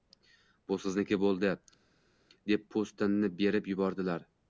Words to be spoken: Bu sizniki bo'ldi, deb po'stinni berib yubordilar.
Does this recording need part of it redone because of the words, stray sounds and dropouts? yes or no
no